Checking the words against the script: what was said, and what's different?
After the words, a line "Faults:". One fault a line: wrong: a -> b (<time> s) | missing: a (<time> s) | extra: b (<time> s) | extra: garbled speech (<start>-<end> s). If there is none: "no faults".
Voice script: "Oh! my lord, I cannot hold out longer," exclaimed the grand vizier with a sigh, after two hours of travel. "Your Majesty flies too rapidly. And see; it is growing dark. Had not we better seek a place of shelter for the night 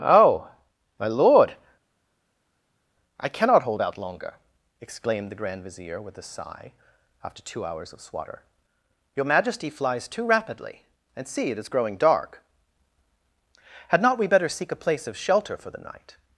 "Oh! my lord, I cannot hold out longer," exclaimed the grand vizier with a sigh, after two hours of swatter. "Your Majesty flies too rapidly. And see; it is growing dark. Had not we better seek a place of shelter for the night
Faults:
wrong: travel -> swatter (8.0 s)